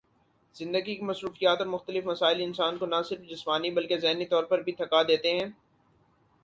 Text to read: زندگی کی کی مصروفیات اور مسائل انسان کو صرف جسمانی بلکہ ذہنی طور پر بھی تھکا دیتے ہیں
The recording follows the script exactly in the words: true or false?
false